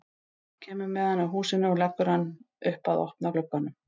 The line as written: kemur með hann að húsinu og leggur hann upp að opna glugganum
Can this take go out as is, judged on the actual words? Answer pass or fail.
pass